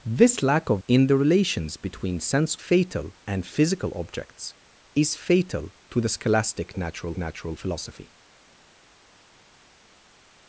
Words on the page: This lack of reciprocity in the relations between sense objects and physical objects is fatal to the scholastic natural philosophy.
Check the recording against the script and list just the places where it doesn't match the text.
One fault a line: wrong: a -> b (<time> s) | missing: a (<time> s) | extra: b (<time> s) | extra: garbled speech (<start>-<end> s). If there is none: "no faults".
missing: reciprocity (0.8 s)
wrong: objects -> fatal (2.6 s)
extra: natural (7.2 s)